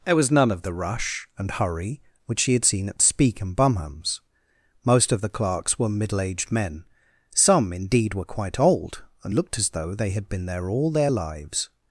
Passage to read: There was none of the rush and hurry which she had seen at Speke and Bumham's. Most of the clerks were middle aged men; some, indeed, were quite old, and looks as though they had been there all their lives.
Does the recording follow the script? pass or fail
fail